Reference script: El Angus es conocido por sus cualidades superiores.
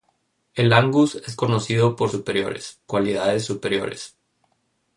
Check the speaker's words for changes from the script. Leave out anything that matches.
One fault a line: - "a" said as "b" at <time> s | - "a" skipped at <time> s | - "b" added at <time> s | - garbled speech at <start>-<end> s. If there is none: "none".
- "sus" said as "superiores" at 2.1 s